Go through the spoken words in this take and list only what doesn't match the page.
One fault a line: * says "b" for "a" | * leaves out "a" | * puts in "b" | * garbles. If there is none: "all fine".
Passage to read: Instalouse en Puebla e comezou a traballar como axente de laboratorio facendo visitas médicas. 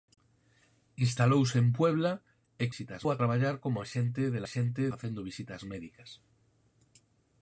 * says "visitas" for "comezou"
* says "axente" for "laboratorio"